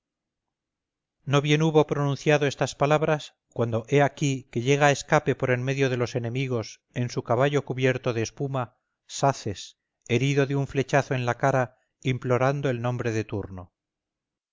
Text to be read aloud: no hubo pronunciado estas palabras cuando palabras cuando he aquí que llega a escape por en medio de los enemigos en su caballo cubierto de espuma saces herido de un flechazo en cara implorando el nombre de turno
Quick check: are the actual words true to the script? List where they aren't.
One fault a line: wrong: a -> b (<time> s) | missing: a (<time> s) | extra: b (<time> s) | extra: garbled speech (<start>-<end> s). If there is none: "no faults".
extra: bien (1.4 s)
missing: palabras cuando (3.9 s)
extra: la (11.3 s)